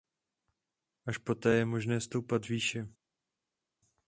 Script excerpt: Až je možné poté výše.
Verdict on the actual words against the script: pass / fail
fail